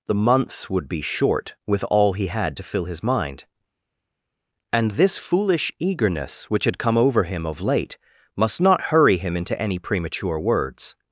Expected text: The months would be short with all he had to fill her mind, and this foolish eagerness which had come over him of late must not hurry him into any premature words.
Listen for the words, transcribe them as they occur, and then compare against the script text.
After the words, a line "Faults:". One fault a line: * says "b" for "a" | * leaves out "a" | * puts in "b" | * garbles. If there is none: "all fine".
The months would be short with all he had to fill his mind, and this foolish eagerness which had come over him of late must not hurry him into any premature words.
Faults:
* says "his" for "her"